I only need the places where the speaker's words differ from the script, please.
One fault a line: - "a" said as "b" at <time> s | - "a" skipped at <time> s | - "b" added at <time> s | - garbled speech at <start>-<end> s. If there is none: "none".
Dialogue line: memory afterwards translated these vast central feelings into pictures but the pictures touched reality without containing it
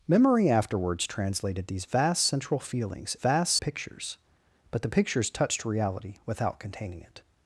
- "into" said as "vast" at 3.2 s